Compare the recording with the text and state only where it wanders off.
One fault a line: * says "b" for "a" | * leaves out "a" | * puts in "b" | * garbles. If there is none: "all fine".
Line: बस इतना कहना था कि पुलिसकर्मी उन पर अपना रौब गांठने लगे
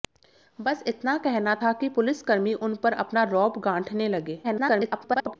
* garbles